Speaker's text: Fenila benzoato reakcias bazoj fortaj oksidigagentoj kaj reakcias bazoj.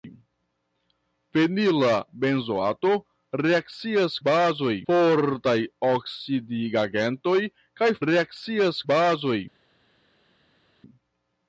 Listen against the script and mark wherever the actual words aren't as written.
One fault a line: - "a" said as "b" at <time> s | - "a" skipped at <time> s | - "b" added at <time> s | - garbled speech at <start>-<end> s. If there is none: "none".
none